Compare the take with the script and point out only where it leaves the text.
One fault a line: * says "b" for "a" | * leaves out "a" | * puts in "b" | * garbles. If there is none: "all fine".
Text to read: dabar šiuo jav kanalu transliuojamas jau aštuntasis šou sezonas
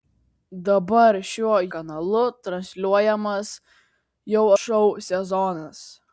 * leaves out "jav"
* leaves out "aštuntasis"